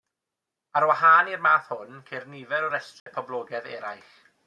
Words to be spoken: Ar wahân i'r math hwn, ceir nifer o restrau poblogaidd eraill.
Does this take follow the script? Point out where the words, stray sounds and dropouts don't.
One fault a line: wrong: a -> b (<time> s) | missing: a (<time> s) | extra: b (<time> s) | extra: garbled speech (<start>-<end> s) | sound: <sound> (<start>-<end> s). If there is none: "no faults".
sound: dropout (3.0-3.1 s)